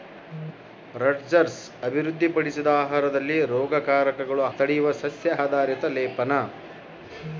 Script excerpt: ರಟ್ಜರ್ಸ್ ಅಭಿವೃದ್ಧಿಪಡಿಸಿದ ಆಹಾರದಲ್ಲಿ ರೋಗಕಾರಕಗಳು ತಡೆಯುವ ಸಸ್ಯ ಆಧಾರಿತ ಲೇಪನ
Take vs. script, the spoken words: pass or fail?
pass